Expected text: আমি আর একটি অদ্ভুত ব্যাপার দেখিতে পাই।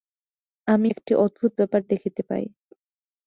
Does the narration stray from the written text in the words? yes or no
yes